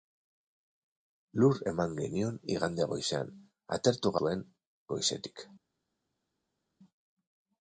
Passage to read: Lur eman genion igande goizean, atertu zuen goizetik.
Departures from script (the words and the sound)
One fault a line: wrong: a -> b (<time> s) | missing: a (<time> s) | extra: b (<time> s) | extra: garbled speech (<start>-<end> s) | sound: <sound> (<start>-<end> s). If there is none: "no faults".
no faults